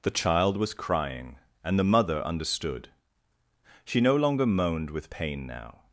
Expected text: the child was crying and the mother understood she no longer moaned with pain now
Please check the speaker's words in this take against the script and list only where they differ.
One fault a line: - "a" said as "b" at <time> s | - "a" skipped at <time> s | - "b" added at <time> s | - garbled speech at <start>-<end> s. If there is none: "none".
none